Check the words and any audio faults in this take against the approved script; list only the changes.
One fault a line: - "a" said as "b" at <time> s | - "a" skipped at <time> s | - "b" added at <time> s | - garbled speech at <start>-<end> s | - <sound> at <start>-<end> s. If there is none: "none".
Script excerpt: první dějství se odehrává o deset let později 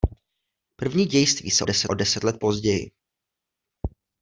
- "odehrává" said as "deset" at 1.6 s